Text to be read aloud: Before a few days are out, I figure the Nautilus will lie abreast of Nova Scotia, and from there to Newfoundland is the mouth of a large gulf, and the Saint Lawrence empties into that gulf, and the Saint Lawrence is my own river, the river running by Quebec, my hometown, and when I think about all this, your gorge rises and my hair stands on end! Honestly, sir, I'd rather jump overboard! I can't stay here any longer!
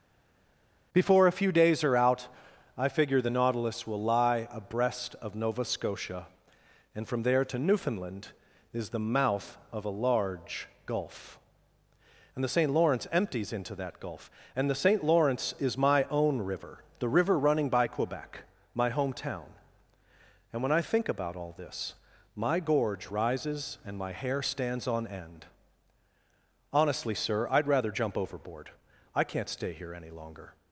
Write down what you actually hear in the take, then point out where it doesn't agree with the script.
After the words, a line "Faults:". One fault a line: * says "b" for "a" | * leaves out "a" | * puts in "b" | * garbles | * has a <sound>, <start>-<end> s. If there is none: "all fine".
Before a few days are out, I figure the Nautilus will lie abreast of Nova Scotia, and from there to Newfoundland is the mouth of a large gulf, and the Saint Lawrence empties into that gulf, and the Saint Lawrence is my own river, the river running by Quebec, my hometown, and when I think about all this, my gorge rises and my hair stands on end! Honestly, sir, I'd rather jump overboard! I can't stay here any longer!
Faults:
* says "my" for "your"